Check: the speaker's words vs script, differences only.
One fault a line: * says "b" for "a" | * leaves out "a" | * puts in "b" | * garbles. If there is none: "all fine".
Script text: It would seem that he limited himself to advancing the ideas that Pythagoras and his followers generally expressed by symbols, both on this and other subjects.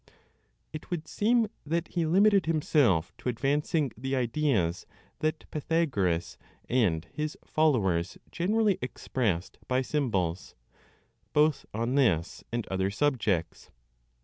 all fine